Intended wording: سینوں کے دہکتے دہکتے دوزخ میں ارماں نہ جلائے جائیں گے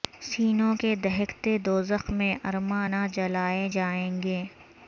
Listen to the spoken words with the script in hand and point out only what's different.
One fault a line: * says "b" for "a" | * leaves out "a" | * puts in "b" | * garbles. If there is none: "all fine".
* leaves out "دہکتے"